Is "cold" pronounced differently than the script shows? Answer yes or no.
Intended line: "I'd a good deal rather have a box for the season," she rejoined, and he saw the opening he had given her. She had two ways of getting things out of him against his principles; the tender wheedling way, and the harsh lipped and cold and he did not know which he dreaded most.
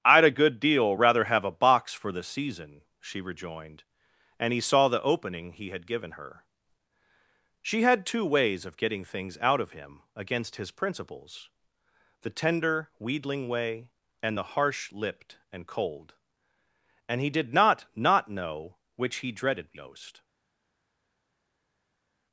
no